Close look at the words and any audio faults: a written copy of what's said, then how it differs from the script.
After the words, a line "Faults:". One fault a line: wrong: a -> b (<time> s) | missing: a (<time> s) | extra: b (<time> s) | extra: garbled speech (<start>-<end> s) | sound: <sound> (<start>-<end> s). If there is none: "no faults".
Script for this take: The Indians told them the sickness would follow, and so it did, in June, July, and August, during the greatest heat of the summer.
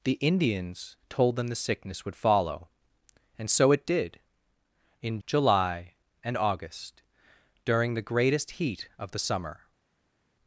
The Indians told them the sickness would follow, and so it did, in July, and August, during the greatest heat of the summer.
Faults:
missing: June (5.2 s)